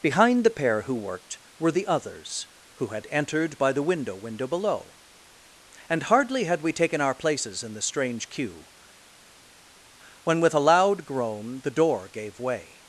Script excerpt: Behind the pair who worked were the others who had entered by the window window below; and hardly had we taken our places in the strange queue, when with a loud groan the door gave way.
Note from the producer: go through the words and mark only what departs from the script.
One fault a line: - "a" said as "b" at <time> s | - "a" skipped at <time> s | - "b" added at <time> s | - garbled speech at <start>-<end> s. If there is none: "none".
none